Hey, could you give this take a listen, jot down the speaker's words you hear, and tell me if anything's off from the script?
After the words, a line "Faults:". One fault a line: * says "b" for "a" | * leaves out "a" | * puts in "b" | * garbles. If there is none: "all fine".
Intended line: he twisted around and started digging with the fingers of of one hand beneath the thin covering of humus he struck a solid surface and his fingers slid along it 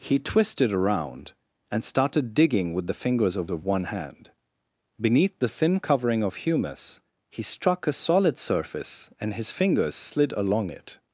he twisted around and started digging with the fingers of of one hand beneath the thin covering of humus he struck a solid surface and his fingers slid along it
Faults:
all fine